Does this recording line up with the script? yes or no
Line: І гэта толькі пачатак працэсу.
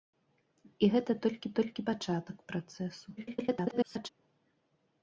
no